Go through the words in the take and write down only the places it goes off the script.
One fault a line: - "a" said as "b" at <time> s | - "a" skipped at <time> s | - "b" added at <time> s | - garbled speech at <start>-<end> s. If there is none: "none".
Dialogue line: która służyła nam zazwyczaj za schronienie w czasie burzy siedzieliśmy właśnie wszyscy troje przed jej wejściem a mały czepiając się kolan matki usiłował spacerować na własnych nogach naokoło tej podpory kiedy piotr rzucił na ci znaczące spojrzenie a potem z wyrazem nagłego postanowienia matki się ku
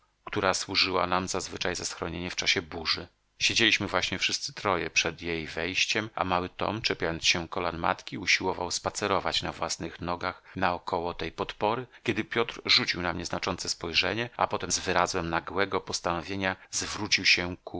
- "tom" added at 6.5 s
- "ci" said as "mnie" at 13.1 s
- "matki" said as "zwrócił" at 16.7 s